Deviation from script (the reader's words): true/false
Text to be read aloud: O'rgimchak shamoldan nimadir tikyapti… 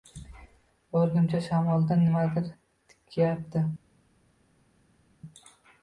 false